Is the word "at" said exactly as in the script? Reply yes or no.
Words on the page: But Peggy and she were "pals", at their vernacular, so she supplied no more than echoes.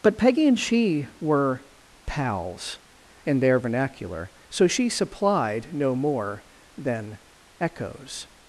no